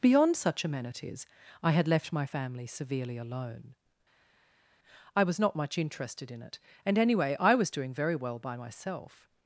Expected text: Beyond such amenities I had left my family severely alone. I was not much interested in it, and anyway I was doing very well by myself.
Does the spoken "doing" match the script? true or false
true